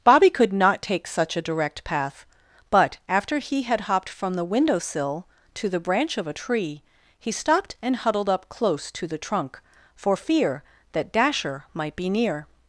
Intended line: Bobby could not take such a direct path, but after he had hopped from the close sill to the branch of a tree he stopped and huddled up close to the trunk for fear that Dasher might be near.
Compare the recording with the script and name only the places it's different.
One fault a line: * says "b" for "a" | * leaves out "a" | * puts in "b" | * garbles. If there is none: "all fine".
* says "window" for "close"